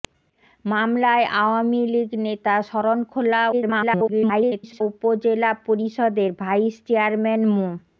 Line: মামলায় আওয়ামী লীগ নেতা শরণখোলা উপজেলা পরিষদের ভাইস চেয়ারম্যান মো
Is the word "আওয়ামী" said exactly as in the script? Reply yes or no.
yes